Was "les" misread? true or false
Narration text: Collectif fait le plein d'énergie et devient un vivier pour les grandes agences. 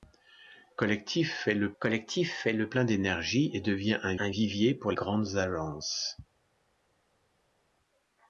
true